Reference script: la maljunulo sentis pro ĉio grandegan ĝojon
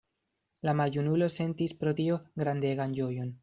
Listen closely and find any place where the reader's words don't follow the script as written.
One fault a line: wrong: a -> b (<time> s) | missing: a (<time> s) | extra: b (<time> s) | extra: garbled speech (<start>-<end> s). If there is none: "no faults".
wrong: ĉio -> tio (2.0 s)